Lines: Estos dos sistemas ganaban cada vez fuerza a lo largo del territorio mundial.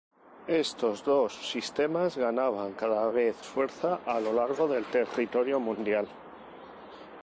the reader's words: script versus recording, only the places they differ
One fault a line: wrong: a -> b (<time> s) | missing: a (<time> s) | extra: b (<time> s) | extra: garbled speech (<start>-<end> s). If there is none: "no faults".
no faults